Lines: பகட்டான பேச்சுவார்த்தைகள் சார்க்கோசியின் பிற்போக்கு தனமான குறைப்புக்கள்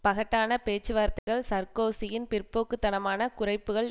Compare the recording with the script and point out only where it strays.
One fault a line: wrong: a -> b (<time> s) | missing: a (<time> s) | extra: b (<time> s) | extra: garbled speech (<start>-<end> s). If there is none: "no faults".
no faults